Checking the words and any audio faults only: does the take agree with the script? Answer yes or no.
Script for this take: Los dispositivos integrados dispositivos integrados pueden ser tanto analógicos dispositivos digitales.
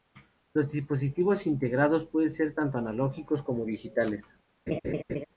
no